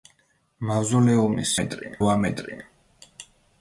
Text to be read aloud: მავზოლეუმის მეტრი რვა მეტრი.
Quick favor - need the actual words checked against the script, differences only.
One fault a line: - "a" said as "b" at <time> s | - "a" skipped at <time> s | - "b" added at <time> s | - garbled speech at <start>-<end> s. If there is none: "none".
none